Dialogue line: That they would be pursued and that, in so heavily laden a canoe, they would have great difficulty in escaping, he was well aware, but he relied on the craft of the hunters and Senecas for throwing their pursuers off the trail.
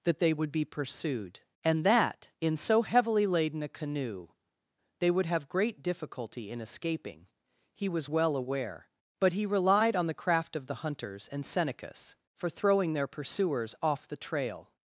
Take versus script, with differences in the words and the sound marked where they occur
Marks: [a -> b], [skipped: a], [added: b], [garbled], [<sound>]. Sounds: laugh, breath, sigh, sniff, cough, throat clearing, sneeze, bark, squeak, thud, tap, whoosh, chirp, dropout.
That they would be pursued and that, in so heavily laden a canoe, they would have great difficulty in escaping, he was well aware, but he relied on the craft of the hunters and Senecas for throwing their pursuers off the trail.